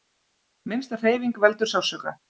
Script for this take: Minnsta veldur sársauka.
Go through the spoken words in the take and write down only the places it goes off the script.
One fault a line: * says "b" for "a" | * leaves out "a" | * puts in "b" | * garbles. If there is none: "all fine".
* puts in "hreyfing"